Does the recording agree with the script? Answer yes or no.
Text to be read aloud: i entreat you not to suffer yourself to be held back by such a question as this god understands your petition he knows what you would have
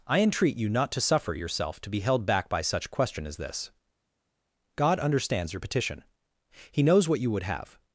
no